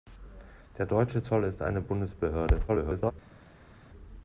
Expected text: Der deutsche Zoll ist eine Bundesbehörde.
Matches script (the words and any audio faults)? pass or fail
fail